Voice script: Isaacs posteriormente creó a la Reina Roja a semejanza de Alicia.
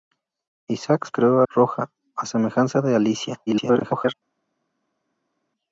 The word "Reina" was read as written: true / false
false